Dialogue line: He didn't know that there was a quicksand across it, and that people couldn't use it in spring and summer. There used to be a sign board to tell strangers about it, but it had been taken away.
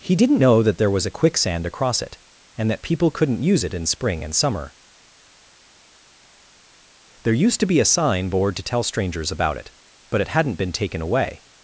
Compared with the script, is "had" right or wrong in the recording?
wrong